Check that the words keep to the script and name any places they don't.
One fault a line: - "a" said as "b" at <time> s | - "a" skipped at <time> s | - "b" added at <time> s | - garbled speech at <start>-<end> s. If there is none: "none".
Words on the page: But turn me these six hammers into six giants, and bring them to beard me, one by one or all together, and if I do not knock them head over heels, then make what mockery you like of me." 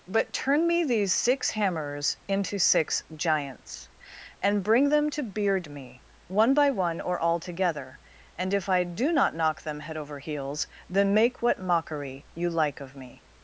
none